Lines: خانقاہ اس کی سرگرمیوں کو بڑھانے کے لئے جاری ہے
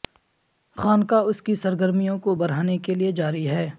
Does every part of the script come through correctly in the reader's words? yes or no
yes